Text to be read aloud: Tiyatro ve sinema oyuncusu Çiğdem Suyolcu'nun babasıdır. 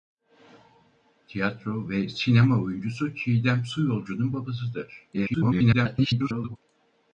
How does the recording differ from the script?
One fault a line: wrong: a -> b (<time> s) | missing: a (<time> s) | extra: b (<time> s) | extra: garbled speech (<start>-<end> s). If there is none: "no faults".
extra: garbled speech (5.1-6.6 s)